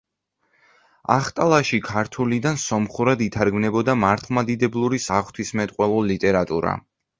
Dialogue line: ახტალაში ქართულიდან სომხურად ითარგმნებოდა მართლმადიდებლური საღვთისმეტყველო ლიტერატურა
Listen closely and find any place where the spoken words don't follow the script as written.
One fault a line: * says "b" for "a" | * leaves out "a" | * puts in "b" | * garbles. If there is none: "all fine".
all fine